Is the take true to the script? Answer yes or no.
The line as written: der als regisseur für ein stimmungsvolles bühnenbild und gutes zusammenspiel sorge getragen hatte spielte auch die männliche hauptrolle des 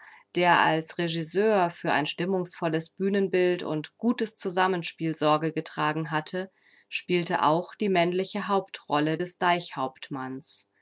yes